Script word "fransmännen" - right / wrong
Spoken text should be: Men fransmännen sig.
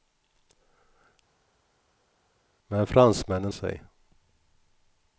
right